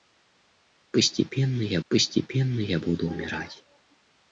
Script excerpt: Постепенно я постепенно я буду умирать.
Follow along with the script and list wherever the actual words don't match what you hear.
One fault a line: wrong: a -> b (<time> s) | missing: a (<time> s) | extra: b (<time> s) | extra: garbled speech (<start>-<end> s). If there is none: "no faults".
no faults